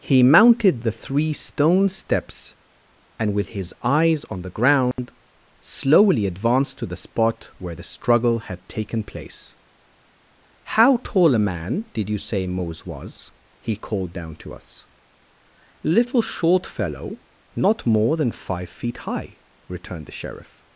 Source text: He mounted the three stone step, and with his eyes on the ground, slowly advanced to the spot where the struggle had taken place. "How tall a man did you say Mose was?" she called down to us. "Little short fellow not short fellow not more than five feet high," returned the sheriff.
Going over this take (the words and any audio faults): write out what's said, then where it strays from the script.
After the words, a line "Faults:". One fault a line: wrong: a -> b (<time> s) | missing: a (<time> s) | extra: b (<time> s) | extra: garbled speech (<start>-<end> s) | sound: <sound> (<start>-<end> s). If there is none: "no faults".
He mounted the three stone steps, and with his eyes on the ground, slowly advanced to the spot where the struggle had taken place. "How tall a man did you say Mose was?" he called down to us. "Little short fellow not more than five feet high," returned the sheriff.
Faults:
wrong: step -> steps (1.9 s)
sound: dropout (4.9-5.0 s)
wrong: she -> he (13.6 s)
missing: short fellow not (17.9 s)